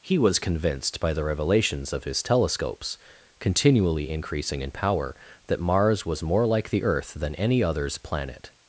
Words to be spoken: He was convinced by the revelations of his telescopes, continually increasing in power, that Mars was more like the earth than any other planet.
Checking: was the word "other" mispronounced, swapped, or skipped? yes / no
yes